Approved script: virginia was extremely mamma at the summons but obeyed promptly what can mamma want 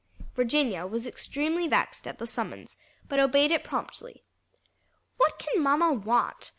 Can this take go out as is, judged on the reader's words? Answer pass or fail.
fail